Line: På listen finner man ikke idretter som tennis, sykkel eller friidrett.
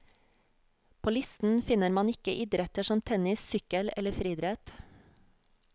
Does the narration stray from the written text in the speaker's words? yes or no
no